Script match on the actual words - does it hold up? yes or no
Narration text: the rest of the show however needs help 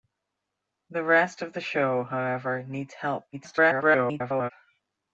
no